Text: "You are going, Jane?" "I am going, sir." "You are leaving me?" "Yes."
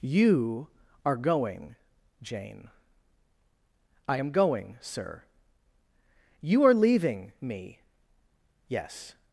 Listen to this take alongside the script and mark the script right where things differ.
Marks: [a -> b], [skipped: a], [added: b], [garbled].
"You are going, Jane?" "I am going, sir." "You are leaving me?" "Yes."